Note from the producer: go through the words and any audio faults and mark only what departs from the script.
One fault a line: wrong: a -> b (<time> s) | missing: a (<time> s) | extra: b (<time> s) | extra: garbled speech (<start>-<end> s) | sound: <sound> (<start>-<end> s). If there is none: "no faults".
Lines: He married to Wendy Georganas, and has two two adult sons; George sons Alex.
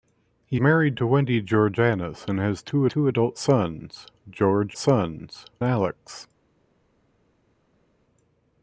no faults